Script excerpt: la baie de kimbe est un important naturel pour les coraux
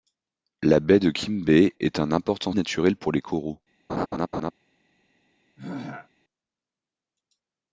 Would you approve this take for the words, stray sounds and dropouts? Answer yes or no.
no